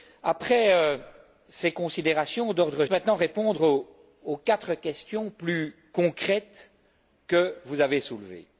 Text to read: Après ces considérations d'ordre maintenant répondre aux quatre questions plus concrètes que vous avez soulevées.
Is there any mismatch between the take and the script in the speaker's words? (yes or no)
no